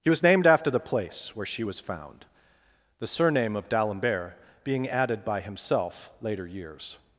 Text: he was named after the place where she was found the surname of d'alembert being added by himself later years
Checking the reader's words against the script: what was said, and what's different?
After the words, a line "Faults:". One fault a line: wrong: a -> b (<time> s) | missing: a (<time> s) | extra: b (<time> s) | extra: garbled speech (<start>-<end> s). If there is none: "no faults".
he was named after the place where she was found the surname of d'alembert being added by himself later years
Faults:
no faults